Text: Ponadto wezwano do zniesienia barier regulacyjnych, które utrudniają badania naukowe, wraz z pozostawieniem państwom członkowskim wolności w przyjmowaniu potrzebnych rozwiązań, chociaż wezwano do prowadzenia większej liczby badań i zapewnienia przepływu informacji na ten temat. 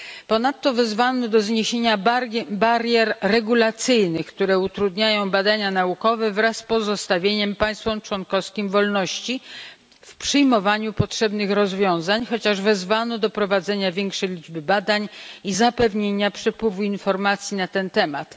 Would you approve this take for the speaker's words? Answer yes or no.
yes